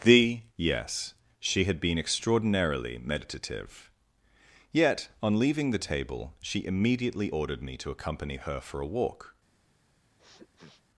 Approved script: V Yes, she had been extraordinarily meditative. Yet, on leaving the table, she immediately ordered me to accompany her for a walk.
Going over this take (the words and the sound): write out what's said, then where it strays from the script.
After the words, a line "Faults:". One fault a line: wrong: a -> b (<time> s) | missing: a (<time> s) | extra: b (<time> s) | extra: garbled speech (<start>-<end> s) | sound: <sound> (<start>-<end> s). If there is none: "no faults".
The Yes, she had been extraordinarily meditative. Yet, on leaving the table, she immediately ordered me to accompany her for a walk.
Faults:
wrong: V -> The (0.0 s)
sound: sniff (10.2-10.8 s)